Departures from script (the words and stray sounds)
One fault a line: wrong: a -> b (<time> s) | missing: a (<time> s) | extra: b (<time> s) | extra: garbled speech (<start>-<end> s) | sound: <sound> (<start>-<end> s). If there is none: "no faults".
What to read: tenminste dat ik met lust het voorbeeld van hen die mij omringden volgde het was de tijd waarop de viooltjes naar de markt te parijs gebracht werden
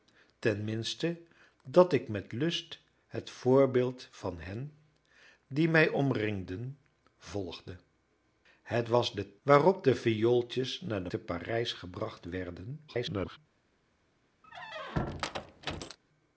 missing: tijd (9.4 s)
missing: markt (11.1 s)
extra: garbled speech (12.9-13.4 s)
sound: squeak (14.4-16.0 s)